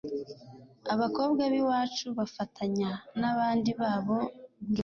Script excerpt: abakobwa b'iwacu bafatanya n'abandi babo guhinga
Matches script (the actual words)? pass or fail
pass